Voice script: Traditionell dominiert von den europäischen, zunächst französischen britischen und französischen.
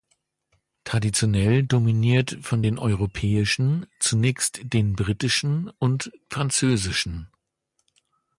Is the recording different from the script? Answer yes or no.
yes